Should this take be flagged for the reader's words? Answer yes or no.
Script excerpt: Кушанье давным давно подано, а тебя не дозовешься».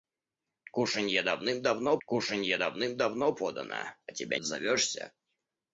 yes